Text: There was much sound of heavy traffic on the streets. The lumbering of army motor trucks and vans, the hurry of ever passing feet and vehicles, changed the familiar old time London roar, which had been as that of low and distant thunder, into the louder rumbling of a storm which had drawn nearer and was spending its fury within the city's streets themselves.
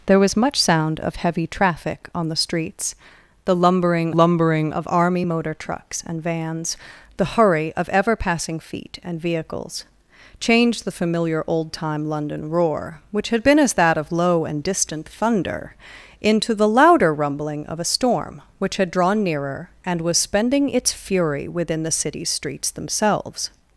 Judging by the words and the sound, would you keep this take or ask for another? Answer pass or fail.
fail